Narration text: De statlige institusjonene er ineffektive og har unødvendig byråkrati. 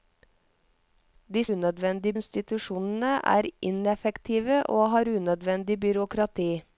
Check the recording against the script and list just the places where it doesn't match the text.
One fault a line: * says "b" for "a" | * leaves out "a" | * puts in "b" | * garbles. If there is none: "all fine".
* says "unødvendig" for "statlige"